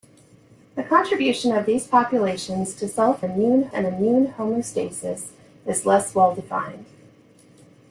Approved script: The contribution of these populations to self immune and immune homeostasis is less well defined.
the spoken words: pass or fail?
pass